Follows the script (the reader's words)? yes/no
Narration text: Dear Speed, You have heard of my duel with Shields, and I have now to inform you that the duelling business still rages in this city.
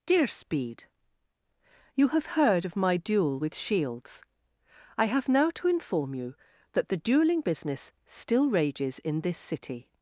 no